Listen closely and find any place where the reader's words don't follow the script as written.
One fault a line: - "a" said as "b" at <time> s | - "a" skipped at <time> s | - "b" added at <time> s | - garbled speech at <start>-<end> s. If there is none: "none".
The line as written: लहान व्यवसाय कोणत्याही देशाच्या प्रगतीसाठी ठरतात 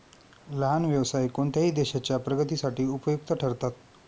- "उपयुक्त" added at 2.9 s